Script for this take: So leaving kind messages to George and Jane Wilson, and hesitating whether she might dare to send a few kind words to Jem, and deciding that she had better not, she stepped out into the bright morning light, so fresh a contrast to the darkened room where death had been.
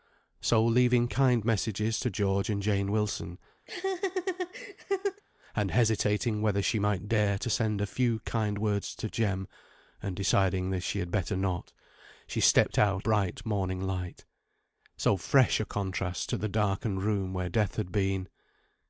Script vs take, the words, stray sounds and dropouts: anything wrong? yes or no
yes